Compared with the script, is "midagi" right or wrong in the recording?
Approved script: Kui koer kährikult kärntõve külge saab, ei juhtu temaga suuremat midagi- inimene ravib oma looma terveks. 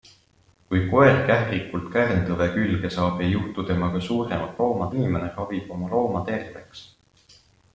wrong